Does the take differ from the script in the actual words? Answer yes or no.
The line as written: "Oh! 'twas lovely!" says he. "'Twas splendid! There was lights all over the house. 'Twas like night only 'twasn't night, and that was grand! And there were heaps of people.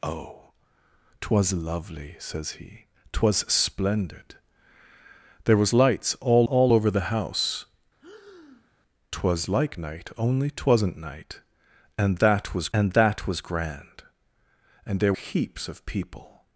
yes